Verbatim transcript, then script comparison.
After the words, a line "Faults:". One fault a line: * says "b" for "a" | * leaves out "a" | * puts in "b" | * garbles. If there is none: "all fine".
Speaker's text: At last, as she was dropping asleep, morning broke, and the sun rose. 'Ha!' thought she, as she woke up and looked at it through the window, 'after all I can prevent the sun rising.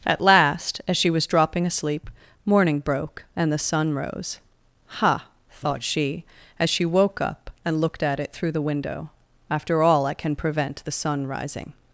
At last, as she was dropping asleep, morning broke, and the sun rose. 'Ha!' thought she, as she woke up and looked at it through the window, 'after all I can prevent the sun rising.
Faults:
all fine